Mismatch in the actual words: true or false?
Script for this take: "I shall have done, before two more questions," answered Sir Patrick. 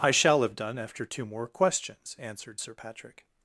true